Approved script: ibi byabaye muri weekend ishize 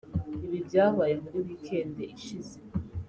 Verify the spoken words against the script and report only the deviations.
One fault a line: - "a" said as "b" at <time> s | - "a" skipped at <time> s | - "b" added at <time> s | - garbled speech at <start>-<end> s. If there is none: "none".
none